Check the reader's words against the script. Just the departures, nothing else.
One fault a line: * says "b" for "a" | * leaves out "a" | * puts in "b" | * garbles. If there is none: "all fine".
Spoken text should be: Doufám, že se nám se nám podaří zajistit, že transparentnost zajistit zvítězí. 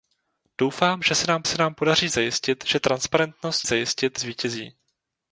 all fine